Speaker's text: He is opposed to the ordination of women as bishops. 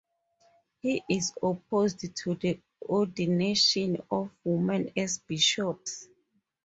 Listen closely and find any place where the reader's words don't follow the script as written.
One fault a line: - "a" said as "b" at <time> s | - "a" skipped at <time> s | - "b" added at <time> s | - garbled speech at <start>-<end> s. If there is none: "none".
none